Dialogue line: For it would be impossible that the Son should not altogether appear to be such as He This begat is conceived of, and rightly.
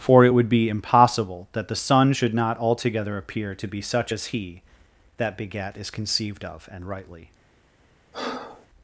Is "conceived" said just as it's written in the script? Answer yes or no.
yes